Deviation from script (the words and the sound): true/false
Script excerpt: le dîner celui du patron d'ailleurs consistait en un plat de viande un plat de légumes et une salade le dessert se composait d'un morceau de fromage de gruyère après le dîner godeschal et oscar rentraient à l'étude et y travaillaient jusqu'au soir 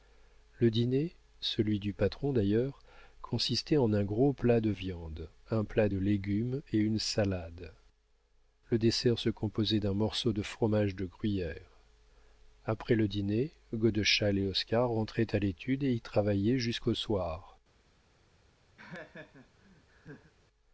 true